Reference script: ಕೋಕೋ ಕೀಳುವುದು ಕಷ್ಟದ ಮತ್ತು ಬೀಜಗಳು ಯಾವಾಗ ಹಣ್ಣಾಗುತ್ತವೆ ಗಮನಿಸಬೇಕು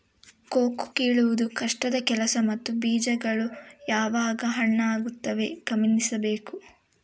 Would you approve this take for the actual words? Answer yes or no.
no